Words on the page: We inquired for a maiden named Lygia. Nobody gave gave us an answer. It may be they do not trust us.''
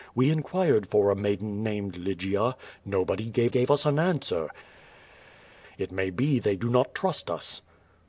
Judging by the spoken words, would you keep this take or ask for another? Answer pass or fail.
pass